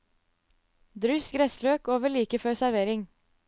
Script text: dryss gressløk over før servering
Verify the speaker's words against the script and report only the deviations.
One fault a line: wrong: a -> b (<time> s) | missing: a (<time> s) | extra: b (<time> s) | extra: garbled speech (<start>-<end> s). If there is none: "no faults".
extra: like (2.1 s)